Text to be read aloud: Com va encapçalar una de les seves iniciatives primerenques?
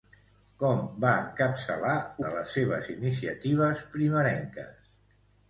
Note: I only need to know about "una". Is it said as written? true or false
false